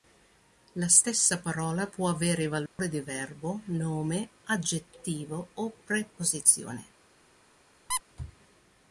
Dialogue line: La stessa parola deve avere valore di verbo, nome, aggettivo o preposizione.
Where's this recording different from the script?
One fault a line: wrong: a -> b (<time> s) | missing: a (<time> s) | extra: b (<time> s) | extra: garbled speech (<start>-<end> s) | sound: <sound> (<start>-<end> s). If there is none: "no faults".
wrong: deve -> può (1.9 s)
sound: dropout (2.7-2.8 s)
sound: squeak (7.9-8.0 s)